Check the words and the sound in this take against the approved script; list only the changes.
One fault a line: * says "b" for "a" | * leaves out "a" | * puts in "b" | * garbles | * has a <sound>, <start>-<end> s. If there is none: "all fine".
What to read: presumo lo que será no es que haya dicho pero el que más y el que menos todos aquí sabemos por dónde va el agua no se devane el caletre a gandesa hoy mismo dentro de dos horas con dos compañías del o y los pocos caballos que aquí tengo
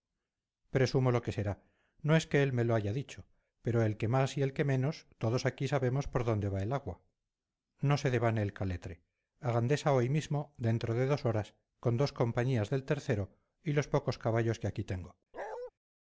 * puts in "él me lo"
* has a bark, 15.3-15.7 s